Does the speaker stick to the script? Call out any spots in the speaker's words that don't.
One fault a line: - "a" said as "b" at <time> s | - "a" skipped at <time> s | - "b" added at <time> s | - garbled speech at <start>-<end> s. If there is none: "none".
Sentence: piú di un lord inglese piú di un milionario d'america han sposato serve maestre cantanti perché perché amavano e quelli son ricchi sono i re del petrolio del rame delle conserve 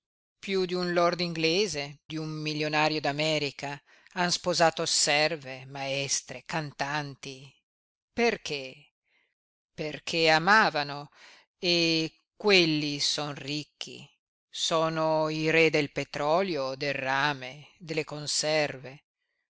- "piú" skipped at 1.8 s